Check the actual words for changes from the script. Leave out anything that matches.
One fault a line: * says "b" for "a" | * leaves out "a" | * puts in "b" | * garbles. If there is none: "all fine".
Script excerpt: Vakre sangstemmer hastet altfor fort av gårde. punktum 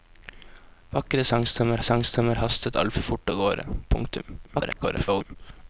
* puts in "sangstemmer"
* garbles